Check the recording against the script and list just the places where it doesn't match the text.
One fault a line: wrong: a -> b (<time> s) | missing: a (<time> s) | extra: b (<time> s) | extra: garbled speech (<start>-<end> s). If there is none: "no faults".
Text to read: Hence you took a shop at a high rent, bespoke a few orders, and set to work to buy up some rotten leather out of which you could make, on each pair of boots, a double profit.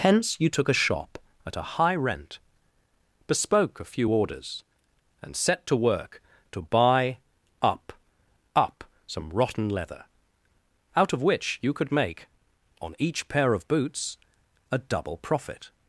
extra: up (8.6 s)